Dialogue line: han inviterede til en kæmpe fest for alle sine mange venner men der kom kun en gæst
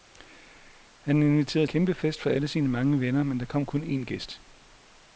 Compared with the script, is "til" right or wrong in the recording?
wrong